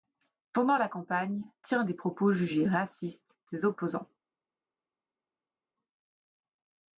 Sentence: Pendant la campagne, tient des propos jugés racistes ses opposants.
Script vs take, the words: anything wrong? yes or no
no